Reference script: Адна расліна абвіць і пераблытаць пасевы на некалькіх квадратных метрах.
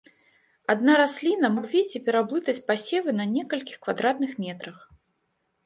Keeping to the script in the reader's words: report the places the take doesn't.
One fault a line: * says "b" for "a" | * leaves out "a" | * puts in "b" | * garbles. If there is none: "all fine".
all fine